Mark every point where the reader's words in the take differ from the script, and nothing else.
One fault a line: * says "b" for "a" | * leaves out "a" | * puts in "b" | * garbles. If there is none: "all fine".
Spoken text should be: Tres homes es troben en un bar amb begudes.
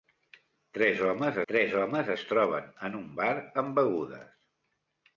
* puts in "tres homes"